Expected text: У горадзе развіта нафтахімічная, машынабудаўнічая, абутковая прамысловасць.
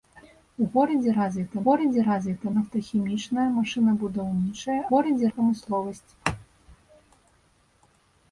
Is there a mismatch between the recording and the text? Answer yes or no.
yes